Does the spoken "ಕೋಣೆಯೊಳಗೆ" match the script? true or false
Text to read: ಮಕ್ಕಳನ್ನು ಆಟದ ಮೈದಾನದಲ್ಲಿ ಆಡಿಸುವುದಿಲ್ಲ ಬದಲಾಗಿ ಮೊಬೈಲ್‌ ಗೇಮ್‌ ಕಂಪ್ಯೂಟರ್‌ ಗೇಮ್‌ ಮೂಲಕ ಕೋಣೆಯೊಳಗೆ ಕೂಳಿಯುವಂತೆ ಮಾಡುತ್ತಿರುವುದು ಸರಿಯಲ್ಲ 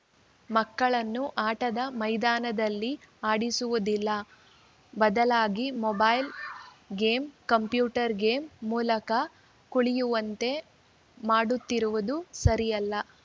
false